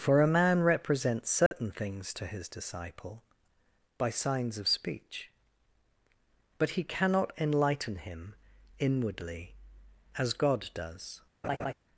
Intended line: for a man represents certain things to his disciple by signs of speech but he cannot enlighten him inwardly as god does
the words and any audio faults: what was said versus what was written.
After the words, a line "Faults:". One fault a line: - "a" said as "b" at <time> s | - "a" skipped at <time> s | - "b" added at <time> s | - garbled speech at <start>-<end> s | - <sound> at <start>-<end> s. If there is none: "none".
for a man represents certain things to his disciple by signs of speech but he cannot enlighten him inwardly as god does
Faults:
- dropout at 1.5-1.5 s
- laugh at 11.4-11.7 s